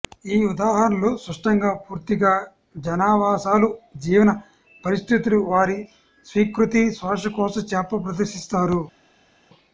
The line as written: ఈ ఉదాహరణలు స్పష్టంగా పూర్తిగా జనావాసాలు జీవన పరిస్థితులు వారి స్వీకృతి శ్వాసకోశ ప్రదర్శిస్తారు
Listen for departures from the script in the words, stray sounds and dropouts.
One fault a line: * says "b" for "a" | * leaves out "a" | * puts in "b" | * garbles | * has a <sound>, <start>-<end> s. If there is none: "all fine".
* puts in "చేప"